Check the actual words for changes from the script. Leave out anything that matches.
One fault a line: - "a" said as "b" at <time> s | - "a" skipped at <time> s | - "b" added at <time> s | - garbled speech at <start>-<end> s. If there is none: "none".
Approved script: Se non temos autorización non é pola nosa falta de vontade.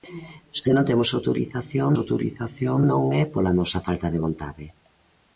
- "autorización" added at 2.0 s